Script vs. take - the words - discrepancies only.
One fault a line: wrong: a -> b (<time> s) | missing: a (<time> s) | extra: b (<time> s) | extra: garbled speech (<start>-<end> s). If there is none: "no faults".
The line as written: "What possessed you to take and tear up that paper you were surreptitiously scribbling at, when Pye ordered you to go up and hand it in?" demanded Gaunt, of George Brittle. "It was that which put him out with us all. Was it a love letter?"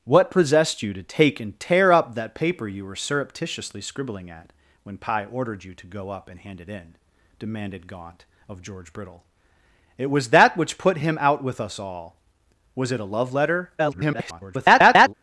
extra: garbled speech (13.8-15.1 s)